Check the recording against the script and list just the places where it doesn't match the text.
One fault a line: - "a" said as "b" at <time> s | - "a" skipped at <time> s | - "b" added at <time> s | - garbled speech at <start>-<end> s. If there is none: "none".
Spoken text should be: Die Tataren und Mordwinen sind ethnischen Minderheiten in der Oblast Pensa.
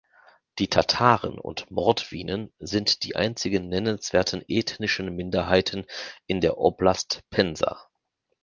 - "die einzigen nennenswerten" added at 3.0 s